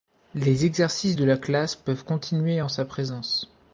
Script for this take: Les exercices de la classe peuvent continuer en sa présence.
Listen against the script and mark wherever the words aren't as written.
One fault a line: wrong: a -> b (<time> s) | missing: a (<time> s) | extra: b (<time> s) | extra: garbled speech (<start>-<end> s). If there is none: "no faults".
no faults